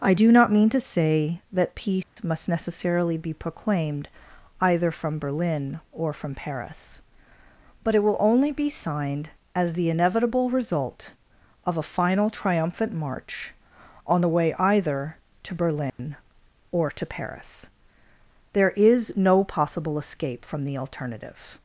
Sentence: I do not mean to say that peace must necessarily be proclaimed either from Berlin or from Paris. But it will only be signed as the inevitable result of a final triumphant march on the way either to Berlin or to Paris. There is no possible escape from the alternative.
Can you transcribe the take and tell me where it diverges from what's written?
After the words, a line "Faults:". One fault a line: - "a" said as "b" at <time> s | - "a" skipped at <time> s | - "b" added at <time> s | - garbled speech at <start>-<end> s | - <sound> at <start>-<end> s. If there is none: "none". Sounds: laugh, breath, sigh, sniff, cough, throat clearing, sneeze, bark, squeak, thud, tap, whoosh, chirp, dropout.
I do not mean to say that peace must necessarily be proclaimed either from Berlin or from Paris. But it will only be signed as the inevitable result of a final triumphant march on the way either to Berlin or to Paris. There is no possible escape from the alternative.
Faults:
- dropout at 2.0-2.2 s
- dropout at 15.9-16.0 s